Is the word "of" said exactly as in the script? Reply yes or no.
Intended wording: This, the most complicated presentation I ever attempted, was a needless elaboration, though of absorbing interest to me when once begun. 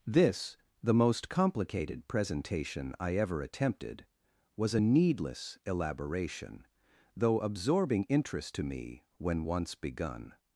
no